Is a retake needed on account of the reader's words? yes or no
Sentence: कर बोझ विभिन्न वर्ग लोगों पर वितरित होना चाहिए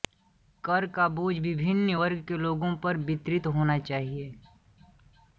yes